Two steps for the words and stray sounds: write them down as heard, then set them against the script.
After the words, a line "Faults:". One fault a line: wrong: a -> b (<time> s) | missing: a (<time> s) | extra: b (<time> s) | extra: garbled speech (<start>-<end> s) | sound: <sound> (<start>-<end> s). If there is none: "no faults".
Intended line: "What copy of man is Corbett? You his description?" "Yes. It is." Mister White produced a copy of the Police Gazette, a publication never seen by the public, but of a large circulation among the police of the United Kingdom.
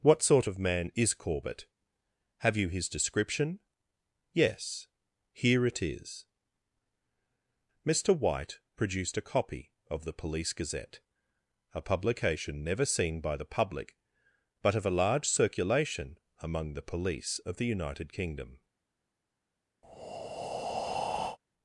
"What sort of man is Corbett? Have you his description?" "Yes. Here it is." Mister White produced a copy of the Police Gazette, a publication never seen by the public, but of a large circulation among the police of the United Kingdom.
Faults:
wrong: copy -> sort (0.2 s)
extra: Have (2.4 s)
extra: Here (5.3 s)
sound: breath (19.8-21.4 s)